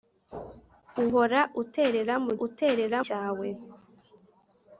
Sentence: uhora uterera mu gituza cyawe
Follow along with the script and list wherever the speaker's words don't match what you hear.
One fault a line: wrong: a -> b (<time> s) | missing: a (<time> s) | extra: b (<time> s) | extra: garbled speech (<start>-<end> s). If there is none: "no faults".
wrong: gituza -> uterera (2.5 s)